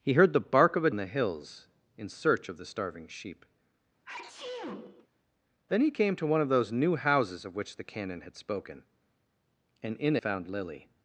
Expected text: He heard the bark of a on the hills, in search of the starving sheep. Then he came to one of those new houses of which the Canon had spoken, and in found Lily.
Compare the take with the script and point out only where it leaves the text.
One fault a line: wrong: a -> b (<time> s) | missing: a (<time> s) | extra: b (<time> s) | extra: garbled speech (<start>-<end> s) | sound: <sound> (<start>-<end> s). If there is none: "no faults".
sound: sneeze (4.0-5.1 s)